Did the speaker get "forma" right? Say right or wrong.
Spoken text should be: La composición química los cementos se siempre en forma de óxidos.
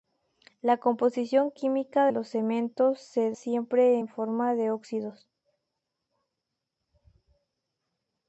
right